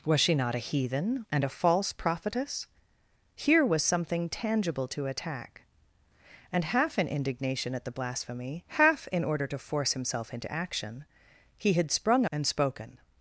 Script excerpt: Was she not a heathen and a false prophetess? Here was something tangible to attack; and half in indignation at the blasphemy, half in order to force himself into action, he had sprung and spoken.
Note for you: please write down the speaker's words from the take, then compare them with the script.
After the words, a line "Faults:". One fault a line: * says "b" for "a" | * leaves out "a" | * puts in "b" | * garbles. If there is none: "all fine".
Was she not a heathen and a false prophetess? Here was something tangible to attack; and half in indignation at the blasphemy, half in order to force himself into action, he had sprung and spoken.
Faults:
all fine